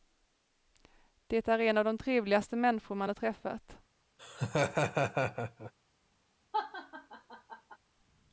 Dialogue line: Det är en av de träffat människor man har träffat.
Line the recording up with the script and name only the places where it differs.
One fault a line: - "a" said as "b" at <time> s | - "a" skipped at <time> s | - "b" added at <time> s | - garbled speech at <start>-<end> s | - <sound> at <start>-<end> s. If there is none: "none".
- "träffat" said as "trevligaste" at 2.0 s
- laugh at 4.2-5.7 s
- laugh at 6.5-7.8 s